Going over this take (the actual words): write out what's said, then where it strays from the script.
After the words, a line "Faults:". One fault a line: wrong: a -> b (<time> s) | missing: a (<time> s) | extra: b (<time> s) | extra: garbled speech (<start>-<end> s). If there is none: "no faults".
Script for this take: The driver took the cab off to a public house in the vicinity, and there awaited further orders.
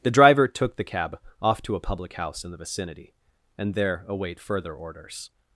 The driver took the cab off to a public house in the vicinity, and there await further orders.
Faults:
wrong: awaited -> await (4.1 s)